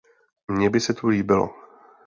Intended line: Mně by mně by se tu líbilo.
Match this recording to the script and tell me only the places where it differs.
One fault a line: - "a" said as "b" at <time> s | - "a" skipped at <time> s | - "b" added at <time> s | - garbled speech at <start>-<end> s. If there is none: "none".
- "mně by" skipped at 0.8 s